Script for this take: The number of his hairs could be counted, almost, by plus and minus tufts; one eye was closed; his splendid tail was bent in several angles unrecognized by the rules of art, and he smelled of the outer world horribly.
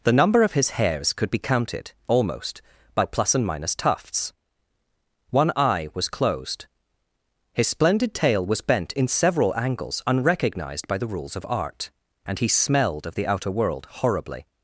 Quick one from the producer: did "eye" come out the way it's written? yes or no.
yes